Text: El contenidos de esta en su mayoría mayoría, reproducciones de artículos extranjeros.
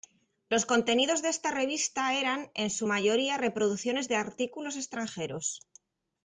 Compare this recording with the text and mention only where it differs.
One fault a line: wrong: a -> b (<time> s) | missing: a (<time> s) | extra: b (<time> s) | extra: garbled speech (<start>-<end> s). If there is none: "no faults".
wrong: El -> Los (0.5 s)
extra: revista eran (1.5 s)
missing: mayoría (3.4 s)